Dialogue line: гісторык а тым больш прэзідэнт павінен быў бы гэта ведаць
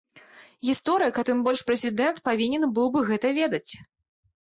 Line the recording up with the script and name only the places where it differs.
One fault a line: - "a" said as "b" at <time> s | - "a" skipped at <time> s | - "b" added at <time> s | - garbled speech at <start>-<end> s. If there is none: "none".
none